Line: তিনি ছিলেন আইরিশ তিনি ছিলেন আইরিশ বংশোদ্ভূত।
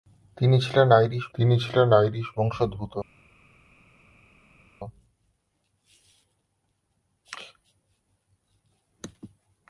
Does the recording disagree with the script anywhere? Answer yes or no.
no